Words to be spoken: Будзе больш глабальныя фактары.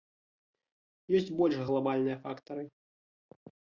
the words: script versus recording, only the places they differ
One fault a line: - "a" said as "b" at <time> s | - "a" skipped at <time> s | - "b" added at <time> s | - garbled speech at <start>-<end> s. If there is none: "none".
- "Будзе" said as "Ёсць" at 1.2 s